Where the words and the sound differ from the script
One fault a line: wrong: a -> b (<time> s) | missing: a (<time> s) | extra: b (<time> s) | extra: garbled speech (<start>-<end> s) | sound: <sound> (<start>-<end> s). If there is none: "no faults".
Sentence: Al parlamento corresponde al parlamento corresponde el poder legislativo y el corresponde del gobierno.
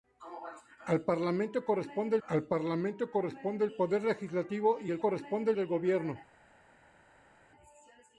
no faults